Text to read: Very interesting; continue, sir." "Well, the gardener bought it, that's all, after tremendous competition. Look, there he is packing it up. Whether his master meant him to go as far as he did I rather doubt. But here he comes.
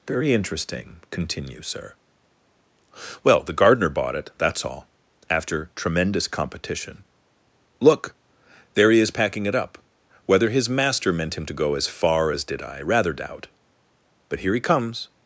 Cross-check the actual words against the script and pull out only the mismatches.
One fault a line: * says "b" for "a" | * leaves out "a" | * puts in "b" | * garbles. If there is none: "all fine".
* leaves out "he"